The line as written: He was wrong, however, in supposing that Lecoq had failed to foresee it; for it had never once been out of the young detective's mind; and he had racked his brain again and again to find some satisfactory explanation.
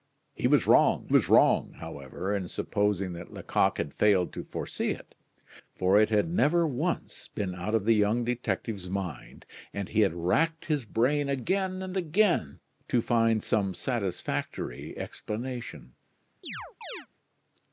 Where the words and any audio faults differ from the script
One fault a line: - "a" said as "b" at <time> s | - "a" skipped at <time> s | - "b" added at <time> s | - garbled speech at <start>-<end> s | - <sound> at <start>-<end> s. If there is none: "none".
- "was wrong" added at 1.1 s
- chirp at 16.4-17.1 s